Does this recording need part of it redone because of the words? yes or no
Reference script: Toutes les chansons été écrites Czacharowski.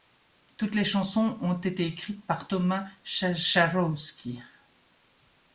yes